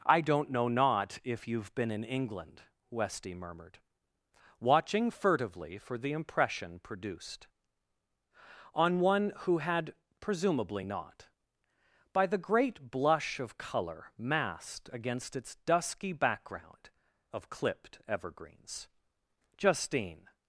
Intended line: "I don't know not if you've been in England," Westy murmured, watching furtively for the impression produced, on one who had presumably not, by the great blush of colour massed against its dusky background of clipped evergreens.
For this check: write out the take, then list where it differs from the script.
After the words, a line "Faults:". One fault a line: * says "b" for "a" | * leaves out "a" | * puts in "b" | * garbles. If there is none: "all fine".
"I don't know not if you've been in England," Westy murmured, watching furtively for the impression produced, on one who had presumably not, by the great blush of colour massed against its dusky background of clipped evergreens. Justine
Faults:
* puts in "Justine"